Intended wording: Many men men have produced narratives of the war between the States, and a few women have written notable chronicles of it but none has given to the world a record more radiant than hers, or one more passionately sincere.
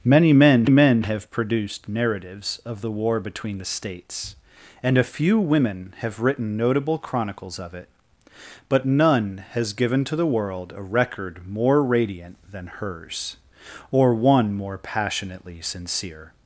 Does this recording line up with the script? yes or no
yes